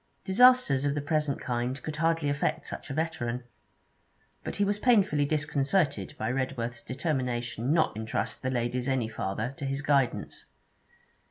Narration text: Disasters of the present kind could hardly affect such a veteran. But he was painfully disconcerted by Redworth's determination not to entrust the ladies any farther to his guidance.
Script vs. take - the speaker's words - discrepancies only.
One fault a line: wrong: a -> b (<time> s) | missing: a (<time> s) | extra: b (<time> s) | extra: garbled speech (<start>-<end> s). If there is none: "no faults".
missing: to (8.0 s)